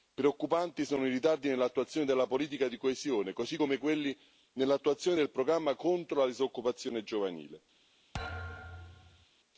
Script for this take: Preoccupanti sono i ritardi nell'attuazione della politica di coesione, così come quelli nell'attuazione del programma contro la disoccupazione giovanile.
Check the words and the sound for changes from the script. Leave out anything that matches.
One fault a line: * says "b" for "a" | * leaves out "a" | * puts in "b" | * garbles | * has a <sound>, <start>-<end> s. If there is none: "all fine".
* has a thud, 8.1-9.3 s